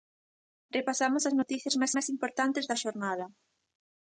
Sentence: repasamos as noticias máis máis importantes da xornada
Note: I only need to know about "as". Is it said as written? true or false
true